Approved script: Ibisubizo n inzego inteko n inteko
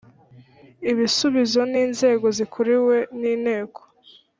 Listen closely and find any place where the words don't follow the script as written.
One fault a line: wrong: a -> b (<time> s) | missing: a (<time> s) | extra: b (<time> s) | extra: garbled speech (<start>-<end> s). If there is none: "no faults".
wrong: inteko -> zikuriwe (2.3 s)